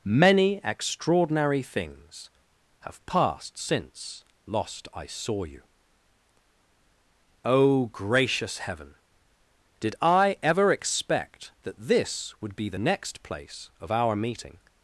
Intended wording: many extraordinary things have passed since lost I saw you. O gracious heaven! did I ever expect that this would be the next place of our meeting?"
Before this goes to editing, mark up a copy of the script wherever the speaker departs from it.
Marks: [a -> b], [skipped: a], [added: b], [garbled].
many extraordinary things have passed since lost I saw you. O gracious heaven! did I ever expect that this would be the next place of our meeting?"